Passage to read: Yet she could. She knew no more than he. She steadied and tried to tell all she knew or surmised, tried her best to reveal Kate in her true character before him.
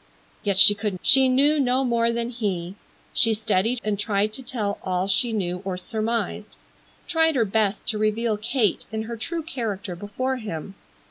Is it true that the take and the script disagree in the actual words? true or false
false